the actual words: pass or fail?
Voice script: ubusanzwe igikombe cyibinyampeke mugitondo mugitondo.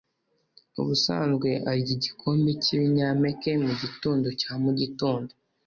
fail